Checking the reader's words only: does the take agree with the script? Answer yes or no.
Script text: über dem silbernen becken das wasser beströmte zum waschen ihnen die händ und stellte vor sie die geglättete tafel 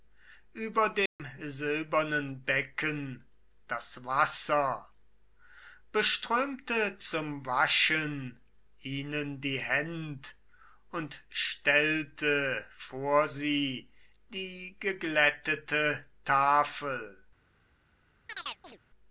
yes